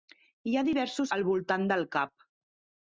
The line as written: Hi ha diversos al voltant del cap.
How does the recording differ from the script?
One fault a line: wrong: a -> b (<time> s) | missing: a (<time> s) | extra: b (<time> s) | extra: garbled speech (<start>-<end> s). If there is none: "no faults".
no faults